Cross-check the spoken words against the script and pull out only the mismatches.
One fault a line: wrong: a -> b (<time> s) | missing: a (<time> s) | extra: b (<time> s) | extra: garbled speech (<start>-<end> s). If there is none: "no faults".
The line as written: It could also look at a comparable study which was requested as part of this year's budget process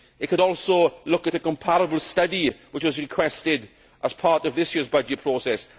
no faults